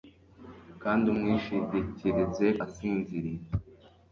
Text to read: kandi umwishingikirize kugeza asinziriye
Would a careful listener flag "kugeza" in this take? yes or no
yes